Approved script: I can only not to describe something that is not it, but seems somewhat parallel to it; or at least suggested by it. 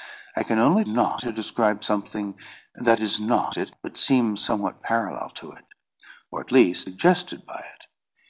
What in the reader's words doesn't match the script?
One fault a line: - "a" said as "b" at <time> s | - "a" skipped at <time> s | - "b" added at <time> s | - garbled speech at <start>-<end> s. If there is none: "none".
none